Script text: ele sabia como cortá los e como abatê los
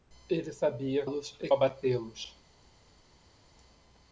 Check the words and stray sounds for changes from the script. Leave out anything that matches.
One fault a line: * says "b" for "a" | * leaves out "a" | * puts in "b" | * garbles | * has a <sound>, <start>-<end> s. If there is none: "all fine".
* leaves out "como cortá"
* leaves out "como"